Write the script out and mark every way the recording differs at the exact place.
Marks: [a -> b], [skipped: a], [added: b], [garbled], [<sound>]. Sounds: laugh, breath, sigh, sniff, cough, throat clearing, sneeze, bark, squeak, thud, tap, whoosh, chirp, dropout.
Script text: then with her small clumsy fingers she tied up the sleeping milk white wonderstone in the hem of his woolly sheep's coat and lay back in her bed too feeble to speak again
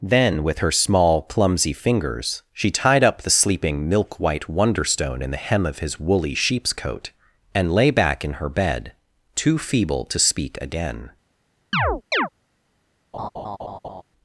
then with her small clumsy fingers she tied up the sleeping milk white wonderstone in the hem of his woolly sheep's coat and lay back in her bed too feeble to speak again [chirp] [laugh]